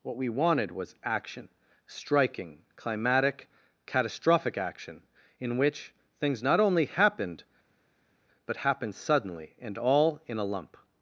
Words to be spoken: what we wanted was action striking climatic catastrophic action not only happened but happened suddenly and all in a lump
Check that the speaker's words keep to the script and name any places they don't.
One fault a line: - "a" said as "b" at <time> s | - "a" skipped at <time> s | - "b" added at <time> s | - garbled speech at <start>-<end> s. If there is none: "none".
- "in which things" added at 5.4 s